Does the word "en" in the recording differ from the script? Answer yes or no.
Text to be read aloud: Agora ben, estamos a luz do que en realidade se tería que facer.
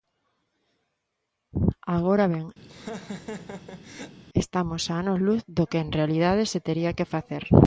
no